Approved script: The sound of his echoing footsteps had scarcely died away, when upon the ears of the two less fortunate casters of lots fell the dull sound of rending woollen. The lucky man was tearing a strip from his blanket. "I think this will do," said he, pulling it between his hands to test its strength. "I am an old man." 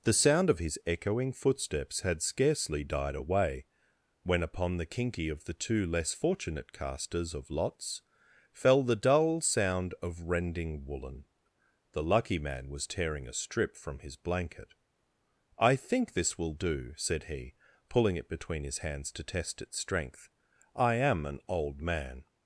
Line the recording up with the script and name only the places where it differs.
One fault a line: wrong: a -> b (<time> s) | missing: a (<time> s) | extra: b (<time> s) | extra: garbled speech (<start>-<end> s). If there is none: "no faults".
wrong: ears -> kinky (4.8 s)